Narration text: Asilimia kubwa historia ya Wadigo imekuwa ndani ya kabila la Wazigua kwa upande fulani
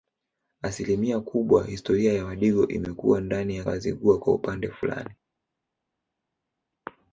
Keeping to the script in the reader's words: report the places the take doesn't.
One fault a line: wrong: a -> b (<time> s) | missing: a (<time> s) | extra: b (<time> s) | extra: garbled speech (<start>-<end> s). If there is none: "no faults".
missing: kabila la (3.6 s)